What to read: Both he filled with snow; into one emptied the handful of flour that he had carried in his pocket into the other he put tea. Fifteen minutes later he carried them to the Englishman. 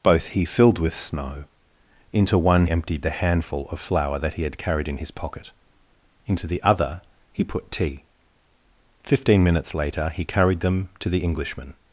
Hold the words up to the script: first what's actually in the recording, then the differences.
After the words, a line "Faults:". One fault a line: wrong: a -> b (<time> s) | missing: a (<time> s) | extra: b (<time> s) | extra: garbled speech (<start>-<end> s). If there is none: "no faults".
Both he filled with snow; into one emptied the handful of flour that he had carried in his pocket into the other he put tea. Fifteen minutes later he carried them to the Englishman.
Faults:
no faults